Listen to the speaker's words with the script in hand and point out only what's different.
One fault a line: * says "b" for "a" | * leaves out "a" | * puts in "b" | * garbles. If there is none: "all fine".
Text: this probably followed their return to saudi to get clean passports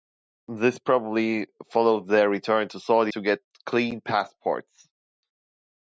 all fine